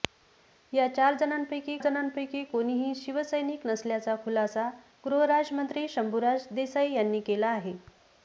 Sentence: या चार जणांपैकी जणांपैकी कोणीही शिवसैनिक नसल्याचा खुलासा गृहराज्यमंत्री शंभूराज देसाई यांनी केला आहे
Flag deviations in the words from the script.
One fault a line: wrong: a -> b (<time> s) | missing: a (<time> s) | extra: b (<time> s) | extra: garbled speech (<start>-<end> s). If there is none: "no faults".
no faults